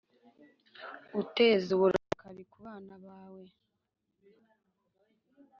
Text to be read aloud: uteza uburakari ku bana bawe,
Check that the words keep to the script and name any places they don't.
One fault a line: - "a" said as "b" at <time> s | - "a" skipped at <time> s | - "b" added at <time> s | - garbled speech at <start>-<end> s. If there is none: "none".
none